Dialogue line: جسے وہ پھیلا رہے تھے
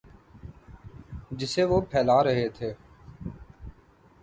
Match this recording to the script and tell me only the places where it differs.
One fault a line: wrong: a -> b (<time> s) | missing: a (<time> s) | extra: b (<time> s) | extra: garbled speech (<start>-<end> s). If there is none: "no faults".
no faults